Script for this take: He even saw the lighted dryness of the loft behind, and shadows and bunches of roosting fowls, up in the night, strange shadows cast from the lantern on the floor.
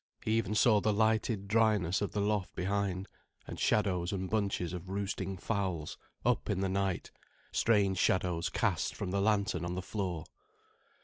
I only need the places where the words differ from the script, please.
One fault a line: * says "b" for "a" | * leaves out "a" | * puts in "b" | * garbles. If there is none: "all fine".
all fine